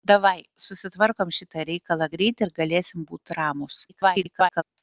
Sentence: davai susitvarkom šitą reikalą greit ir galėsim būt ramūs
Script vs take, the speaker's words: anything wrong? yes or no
yes